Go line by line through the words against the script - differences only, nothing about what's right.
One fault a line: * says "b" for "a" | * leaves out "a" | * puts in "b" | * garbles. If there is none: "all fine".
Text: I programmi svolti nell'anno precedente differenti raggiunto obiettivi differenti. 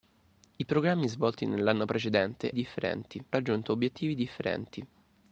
all fine